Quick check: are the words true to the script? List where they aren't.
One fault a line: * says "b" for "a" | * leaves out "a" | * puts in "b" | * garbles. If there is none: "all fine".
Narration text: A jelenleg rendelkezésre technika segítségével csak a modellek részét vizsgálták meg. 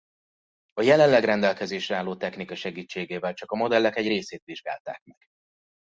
* puts in "álló"
* puts in "egy"